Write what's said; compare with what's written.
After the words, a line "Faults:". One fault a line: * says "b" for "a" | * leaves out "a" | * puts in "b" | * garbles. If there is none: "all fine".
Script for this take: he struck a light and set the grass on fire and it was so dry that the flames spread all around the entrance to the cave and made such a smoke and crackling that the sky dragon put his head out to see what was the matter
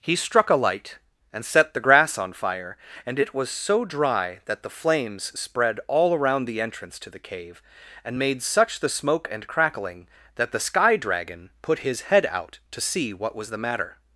he struck a light and set the grass on fire and it was so dry that the flames spread all around the entrance to the cave and made such the smoke and crackling that the sky dragon put his head out to see what was the matter
Faults:
* says "the" for "a"